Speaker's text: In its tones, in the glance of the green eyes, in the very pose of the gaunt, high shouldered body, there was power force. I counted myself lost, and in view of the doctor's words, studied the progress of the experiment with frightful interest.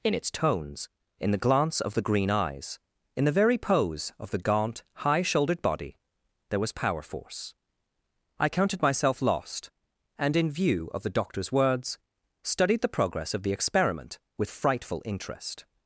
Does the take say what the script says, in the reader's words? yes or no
yes